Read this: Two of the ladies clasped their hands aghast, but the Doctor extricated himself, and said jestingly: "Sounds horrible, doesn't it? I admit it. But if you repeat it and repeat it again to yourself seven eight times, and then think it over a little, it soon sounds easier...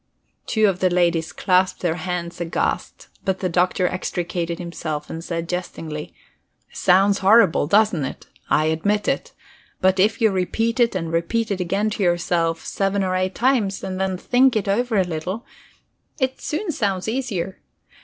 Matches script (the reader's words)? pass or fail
fail